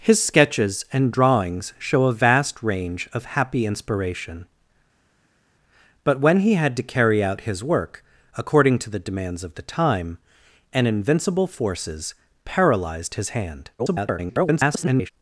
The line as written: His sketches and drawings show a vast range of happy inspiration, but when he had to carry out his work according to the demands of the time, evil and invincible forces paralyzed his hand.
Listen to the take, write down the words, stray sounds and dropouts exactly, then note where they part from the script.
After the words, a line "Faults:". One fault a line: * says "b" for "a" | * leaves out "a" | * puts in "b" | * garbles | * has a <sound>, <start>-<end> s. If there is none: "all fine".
His sketches and drawings show a vast range of happy inspiration, but when he had to carry out his work according to the demands of the time, and invincible forces paralyzed his hand. [garbled]
Faults:
* leaves out "evil"
* garbles